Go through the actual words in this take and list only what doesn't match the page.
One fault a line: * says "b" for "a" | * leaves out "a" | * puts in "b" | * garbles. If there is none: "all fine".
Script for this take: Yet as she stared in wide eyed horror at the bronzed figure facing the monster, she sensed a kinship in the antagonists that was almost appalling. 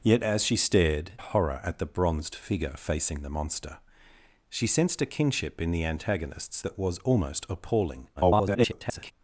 * leaves out "in wide eyed"
* garbles